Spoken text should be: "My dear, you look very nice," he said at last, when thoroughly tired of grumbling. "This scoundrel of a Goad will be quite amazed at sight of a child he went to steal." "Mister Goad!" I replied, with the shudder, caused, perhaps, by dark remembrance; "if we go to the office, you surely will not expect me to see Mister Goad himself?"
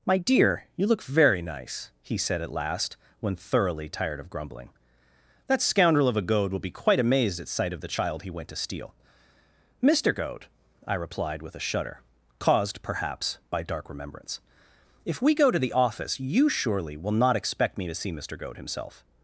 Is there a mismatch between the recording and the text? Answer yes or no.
yes